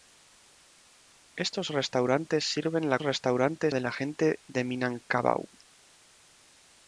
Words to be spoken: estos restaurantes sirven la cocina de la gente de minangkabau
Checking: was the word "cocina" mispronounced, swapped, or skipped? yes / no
yes